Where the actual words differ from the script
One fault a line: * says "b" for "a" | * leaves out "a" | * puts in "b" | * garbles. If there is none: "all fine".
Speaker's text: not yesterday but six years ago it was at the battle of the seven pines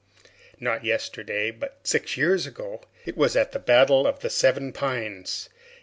all fine